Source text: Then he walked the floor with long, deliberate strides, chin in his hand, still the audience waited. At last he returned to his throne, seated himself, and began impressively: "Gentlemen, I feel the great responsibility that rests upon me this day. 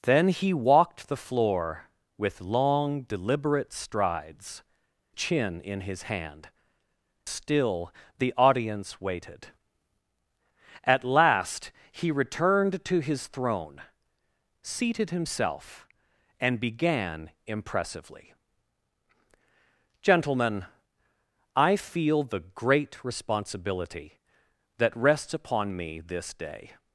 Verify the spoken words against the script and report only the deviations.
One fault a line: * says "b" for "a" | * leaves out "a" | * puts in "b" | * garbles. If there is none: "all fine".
all fine